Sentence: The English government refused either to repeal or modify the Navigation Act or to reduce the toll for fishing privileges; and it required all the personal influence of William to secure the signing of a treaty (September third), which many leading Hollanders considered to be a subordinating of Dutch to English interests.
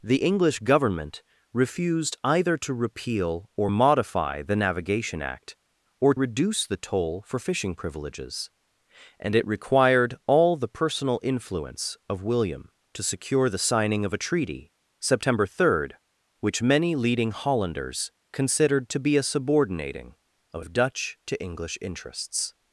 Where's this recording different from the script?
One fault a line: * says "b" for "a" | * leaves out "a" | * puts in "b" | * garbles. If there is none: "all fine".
* leaves out "to"